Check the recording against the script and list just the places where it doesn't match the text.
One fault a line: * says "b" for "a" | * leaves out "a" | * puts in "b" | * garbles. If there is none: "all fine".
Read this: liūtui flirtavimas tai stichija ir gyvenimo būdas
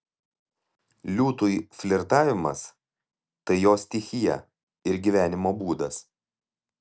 * puts in "jo"